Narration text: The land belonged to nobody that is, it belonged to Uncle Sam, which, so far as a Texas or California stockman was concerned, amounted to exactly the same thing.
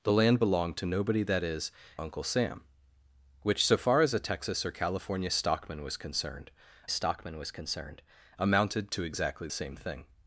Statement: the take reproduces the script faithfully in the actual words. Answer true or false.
false